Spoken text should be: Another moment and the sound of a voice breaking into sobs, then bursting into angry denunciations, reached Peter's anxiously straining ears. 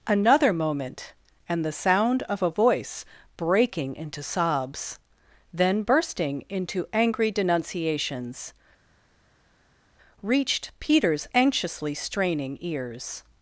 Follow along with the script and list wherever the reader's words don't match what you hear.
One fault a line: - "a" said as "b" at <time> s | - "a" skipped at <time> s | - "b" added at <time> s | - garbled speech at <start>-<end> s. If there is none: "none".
none